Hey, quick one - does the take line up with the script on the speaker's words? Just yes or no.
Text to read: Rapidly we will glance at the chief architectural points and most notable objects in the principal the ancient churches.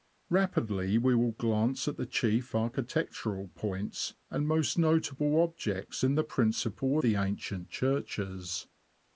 yes